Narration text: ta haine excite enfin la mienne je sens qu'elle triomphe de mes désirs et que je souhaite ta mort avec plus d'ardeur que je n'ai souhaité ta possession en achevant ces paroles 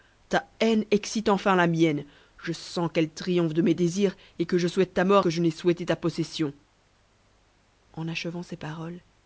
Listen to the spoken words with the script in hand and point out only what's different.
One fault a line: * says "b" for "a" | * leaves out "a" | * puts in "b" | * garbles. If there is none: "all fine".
* leaves out "avec plus d'ardeur"